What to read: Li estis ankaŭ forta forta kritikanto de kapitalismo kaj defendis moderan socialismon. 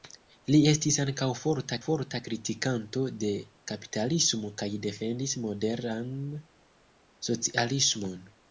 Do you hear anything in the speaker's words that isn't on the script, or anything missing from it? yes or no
no